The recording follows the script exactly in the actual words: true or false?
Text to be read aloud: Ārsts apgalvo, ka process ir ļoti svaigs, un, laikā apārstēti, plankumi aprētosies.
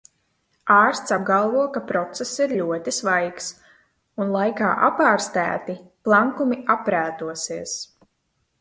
true